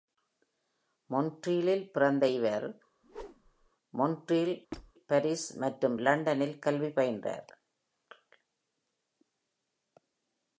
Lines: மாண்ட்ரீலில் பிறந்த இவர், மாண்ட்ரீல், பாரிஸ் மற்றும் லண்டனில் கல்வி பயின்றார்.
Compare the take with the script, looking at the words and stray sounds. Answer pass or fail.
fail